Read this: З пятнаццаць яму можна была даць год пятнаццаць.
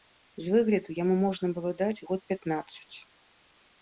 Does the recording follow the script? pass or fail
fail